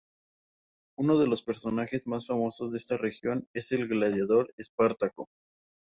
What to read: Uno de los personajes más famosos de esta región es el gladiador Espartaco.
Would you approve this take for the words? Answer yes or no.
yes